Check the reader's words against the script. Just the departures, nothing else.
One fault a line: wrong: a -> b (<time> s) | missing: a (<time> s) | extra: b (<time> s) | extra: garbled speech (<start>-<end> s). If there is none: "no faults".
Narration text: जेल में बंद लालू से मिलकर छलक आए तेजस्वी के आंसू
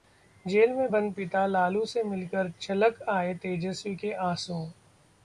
extra: पिता (1.1 s)